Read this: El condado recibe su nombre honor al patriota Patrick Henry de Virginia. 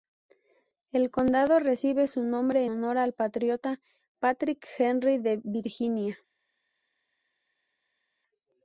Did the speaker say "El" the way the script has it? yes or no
yes